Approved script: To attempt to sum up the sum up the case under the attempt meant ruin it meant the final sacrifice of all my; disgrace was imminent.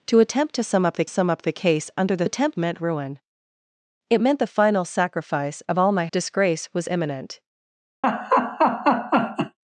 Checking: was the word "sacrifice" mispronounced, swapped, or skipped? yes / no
no